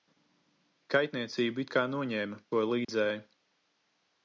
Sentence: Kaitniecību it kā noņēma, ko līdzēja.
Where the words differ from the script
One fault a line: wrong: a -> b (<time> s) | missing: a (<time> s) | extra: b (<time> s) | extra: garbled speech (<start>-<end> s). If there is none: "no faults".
no faults